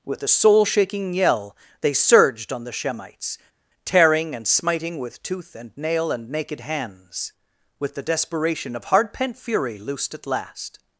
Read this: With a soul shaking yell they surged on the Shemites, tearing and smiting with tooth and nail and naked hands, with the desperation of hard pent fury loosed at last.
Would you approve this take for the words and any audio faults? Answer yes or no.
yes